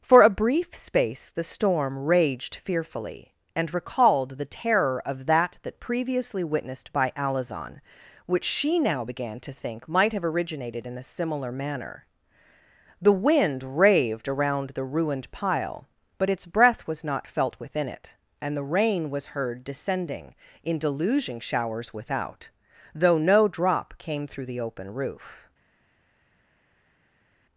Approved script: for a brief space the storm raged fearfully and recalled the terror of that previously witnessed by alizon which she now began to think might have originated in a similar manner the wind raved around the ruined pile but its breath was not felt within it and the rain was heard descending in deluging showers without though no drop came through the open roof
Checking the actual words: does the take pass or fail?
fail